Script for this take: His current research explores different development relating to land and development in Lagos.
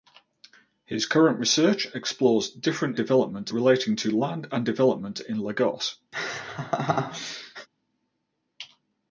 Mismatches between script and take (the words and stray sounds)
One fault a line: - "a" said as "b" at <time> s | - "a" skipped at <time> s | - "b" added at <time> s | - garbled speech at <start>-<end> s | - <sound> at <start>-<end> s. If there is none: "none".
- laugh at 6.1-7.7 s